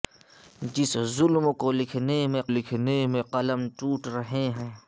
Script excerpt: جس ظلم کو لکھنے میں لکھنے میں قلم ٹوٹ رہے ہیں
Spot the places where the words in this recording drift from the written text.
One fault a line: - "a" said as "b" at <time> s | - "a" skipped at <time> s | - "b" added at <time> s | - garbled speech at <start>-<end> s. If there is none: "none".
none